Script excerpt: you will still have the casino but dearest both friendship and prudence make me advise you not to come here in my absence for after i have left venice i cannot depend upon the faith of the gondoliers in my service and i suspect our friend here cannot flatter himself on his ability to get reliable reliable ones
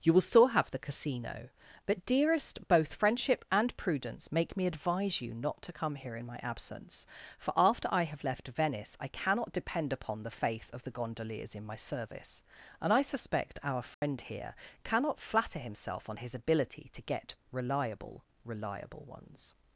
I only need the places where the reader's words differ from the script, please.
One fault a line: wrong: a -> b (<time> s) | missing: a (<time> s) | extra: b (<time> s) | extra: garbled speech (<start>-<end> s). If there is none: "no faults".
no faults